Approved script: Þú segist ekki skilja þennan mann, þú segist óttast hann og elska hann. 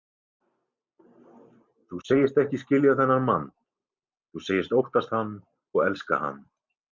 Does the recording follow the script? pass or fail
pass